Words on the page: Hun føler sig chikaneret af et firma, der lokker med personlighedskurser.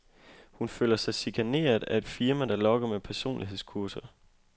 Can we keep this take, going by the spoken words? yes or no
yes